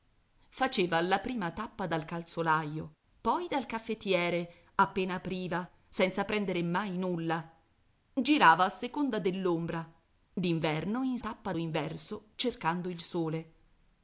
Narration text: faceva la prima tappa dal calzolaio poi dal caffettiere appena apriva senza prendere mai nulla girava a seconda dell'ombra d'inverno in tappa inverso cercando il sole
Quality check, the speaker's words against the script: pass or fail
pass